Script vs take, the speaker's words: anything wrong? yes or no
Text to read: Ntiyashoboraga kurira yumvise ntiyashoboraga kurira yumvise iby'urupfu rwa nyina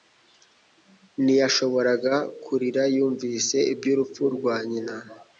yes